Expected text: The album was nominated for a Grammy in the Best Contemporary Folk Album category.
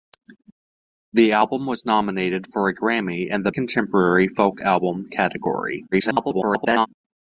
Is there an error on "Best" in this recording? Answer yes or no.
yes